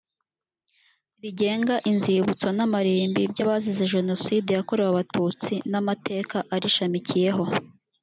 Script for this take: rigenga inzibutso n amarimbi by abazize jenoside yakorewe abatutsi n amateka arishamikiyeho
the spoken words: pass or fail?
pass